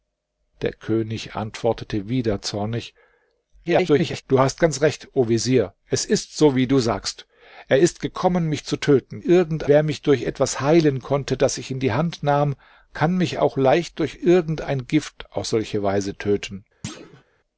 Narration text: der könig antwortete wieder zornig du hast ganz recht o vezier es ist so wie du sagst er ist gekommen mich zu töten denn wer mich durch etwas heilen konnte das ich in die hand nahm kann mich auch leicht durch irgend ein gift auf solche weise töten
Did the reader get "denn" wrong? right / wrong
wrong